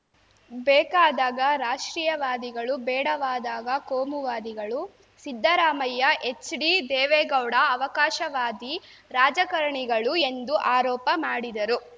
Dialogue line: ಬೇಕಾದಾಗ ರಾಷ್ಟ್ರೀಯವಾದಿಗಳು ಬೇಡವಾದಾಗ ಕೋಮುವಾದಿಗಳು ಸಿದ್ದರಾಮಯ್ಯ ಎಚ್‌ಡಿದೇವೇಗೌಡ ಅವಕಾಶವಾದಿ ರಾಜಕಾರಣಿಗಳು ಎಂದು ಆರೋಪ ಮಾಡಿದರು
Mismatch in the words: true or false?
false